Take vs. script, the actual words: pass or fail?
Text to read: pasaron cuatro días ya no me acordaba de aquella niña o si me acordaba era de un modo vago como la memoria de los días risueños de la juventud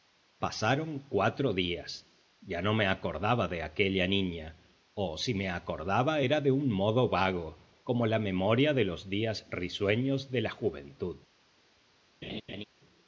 pass